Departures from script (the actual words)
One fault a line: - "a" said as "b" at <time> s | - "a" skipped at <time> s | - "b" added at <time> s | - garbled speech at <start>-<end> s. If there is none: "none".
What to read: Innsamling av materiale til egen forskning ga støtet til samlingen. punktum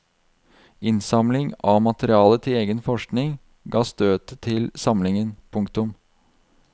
none